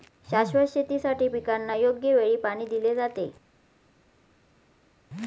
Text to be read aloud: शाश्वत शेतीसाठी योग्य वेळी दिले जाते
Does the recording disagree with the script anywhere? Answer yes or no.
yes